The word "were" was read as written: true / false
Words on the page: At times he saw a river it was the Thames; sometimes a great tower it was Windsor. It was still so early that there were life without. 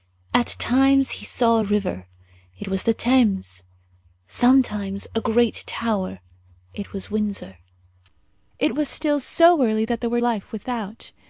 true